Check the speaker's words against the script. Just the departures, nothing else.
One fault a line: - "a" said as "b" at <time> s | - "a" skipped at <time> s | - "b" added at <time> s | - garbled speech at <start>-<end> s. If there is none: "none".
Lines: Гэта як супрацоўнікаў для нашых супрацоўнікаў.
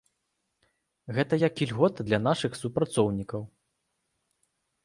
- "супрацоўнікаў" said as "ільгота" at 1.7 s